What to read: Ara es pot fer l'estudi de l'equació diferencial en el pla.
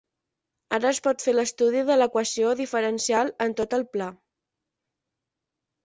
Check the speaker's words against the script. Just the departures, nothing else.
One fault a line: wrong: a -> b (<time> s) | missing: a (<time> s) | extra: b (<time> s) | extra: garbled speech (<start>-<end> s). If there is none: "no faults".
extra: tot (3.6 s)